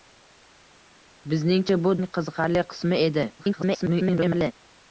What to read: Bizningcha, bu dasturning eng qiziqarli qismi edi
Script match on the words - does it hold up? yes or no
no